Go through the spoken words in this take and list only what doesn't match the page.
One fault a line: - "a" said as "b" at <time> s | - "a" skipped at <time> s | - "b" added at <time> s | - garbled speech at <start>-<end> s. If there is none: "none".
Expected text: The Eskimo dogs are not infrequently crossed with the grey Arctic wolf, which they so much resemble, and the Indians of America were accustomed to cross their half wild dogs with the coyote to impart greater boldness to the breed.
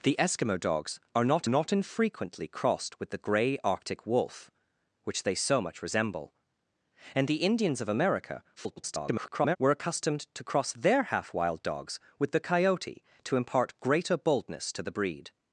- "not" added at 1.5 s
- garbled speech at 8.6-9.6 s